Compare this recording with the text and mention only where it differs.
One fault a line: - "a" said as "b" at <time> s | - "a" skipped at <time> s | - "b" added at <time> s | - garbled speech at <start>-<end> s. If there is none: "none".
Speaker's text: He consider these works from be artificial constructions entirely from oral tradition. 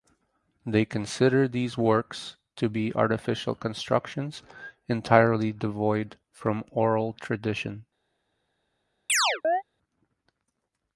- "He" said as "They" at 0.7 s
- "from" said as "to" at 2.5 s
- "devoid" added at 5.5 s